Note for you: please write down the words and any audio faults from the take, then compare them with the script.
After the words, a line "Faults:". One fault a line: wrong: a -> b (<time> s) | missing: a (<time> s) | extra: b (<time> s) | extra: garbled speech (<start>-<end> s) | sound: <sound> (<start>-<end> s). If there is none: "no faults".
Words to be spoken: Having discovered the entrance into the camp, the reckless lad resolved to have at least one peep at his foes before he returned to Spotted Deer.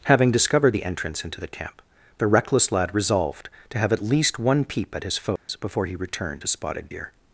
Having discovered the entrance into the camp, the reckless lad resolved to have at least one peep at his foes before he returned to Spotted Deer.
Faults:
sound: dropout (5.4-5.5 s)